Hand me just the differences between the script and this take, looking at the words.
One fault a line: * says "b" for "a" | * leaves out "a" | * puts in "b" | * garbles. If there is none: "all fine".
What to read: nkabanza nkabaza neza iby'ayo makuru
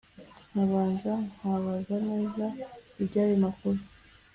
all fine